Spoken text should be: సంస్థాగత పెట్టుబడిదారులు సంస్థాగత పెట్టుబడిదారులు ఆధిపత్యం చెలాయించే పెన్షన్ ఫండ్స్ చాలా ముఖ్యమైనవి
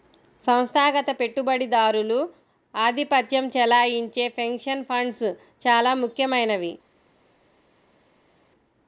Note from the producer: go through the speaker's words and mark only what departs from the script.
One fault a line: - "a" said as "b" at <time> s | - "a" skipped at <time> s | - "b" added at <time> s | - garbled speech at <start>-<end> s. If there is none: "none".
- "సంస్థాగత పెట్టుబడిదారులు" skipped at 2.2 s